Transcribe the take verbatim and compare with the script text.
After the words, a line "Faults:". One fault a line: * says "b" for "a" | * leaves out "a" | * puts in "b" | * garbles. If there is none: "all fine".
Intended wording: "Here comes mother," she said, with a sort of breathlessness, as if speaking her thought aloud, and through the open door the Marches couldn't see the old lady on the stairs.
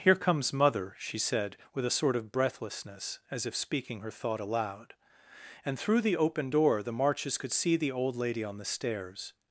"Here comes mother," she said, with a sort of breathlessness, as if speaking her thought aloud, and through the open door the Marches could see the old lady on the stairs.
Faults:
* says "could" for "couldn't"